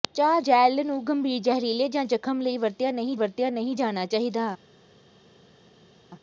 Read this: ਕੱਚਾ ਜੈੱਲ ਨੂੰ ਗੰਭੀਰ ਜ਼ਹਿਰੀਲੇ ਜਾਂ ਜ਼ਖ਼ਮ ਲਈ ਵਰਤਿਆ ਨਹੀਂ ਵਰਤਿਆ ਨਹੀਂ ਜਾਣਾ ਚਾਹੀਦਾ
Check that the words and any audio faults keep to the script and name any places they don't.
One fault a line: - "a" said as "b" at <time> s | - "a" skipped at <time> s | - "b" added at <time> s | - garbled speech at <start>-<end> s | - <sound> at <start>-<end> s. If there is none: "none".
none